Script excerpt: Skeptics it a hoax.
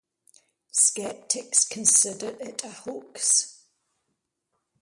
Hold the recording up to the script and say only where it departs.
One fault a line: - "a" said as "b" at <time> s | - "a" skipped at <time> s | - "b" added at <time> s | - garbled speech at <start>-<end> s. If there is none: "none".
- "consider" added at 1.7 s